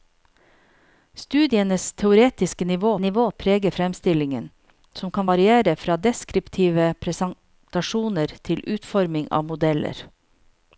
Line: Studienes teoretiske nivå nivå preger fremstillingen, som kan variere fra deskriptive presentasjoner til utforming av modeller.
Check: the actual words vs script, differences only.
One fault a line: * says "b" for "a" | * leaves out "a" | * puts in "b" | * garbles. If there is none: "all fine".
all fine